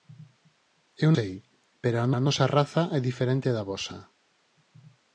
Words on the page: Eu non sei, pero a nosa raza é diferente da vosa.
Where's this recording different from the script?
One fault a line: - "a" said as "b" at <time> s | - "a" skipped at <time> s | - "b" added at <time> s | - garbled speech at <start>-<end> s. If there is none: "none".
- "non" skipped at 1.1 s
- "a" added at 2.1 s